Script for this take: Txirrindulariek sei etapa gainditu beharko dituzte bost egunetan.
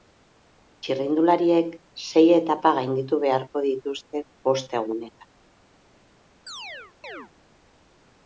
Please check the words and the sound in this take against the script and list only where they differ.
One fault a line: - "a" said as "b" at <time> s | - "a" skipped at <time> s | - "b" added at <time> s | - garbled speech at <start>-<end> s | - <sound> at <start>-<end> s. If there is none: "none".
- chirp at 6.5-7.3 s